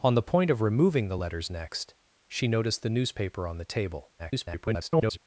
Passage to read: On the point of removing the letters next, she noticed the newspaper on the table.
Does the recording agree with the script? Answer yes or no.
no